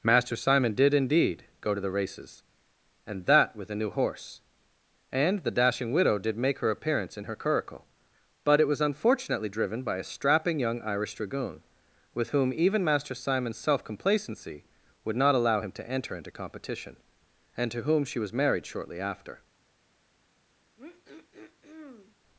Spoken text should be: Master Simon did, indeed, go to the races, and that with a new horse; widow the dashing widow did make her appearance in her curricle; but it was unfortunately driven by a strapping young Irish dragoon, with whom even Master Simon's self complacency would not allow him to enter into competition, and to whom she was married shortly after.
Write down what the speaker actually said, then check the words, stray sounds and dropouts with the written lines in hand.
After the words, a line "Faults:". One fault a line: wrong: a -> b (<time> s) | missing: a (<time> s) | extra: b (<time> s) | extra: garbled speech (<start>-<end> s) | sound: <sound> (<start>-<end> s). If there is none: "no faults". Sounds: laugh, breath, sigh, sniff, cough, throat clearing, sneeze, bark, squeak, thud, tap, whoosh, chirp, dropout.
Master Simon did, indeed, go to the races, and that with a new horse; and the dashing widow did make her appearance in her curricle; but it was unfortunately driven by a strapping young Irish dragoon, with whom even Master Simon's self complacency would not allow him to enter into competition, and to whom she was married shortly after.
Faults:
wrong: widow -> and (5.1 s)
sound: throat clearing (20.8-22.2 s)